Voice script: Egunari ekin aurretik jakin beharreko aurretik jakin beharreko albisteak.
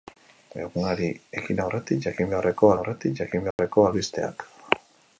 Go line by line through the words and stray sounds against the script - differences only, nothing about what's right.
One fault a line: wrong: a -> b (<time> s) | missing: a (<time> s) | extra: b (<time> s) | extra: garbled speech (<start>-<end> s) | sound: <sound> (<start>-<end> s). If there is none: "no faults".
sound: dropout (3.5-3.6 s)